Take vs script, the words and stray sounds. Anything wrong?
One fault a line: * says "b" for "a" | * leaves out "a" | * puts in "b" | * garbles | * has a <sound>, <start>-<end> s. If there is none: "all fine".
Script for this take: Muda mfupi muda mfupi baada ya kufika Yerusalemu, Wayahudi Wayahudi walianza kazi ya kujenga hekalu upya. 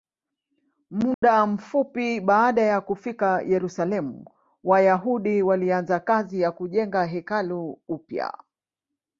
* has a dropout, 1.1-1.2 s
* leaves out "muda mfupi"
* leaves out "Wayahudi"